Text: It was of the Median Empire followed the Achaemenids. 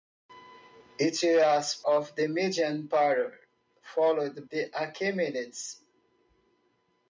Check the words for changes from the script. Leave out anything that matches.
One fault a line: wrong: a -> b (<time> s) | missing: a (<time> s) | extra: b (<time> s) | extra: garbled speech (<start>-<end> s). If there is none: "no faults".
no faults